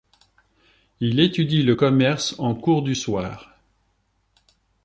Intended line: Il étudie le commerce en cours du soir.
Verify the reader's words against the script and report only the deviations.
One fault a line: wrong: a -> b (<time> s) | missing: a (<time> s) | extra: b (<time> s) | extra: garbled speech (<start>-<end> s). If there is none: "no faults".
no faults